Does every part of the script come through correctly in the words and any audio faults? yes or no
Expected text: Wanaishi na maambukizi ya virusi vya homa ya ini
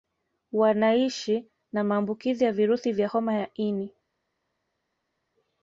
yes